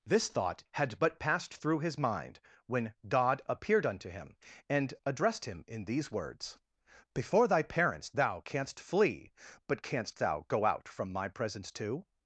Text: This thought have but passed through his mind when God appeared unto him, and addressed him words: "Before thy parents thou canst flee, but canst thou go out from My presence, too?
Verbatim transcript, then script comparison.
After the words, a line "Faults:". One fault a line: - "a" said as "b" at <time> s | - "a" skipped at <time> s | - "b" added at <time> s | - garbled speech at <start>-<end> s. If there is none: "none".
This thought had but passed through his mind when God appeared unto him, and addressed him in these words: "Before thy parents thou canst flee, but canst thou go out from My presence, too?
Faults:
- "have" said as "had" at 0.7 s
- "in these" added at 5.7 s